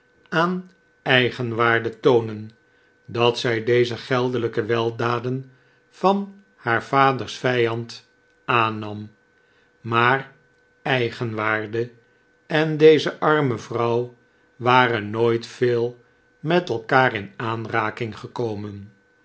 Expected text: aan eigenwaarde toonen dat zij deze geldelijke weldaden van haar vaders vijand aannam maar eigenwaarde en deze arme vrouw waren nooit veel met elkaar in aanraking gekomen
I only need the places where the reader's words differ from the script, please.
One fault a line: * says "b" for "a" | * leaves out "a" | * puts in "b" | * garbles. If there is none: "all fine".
all fine